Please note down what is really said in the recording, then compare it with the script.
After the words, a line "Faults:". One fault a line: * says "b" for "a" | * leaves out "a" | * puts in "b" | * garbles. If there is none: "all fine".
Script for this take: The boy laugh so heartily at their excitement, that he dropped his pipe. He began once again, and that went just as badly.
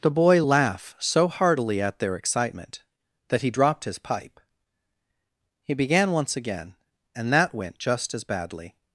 The boy laugh so heartily at their excitement, that he dropped his pipe. He began once again, and that went just as badly.
Faults:
all fine